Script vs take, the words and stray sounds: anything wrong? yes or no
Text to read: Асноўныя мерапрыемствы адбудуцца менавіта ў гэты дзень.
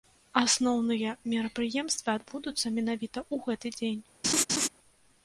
yes